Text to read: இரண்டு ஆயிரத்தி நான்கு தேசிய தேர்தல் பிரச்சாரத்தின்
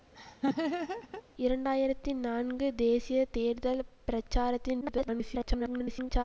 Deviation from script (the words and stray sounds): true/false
true